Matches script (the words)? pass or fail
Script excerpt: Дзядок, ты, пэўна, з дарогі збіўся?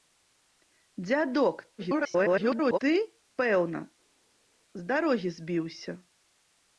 fail